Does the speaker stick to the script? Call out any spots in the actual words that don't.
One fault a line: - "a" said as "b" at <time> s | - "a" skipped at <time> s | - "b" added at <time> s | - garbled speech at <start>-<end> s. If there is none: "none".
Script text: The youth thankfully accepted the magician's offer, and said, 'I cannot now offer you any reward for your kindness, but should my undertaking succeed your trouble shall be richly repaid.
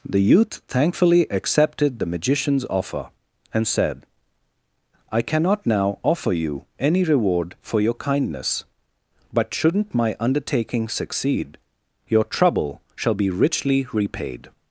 - "should" said as "shouldn't" at 9.5 s